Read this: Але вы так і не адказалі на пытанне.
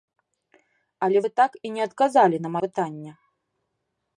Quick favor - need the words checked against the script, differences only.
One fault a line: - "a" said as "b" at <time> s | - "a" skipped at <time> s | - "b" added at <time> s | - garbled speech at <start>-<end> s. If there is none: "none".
none